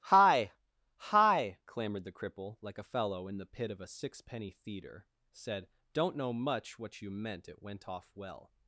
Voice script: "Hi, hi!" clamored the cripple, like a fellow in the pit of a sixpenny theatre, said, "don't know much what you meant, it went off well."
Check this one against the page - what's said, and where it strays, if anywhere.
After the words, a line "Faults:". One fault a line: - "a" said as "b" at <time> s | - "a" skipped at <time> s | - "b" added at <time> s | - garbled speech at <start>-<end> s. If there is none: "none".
"Hi, hi!" clamored the cripple, like a fellow in the pit of a sixpenny theatre, said, "don't know much what you meant, it went off well."
Faults:
none